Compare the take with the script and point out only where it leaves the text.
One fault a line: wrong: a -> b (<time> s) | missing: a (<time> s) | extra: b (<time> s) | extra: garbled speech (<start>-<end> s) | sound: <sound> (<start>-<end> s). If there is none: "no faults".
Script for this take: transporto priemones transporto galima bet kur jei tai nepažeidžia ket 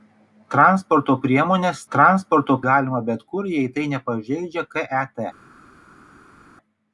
no faults